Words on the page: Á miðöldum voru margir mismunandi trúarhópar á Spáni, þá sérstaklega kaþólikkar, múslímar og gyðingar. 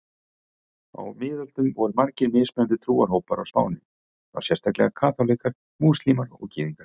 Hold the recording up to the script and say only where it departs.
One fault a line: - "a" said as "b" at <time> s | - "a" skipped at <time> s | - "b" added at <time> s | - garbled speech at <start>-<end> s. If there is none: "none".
none